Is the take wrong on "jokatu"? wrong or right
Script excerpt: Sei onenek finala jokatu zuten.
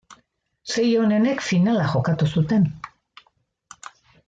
right